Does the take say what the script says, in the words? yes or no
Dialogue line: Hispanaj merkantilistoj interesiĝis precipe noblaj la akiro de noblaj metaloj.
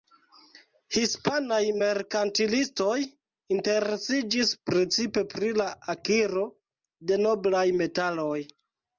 no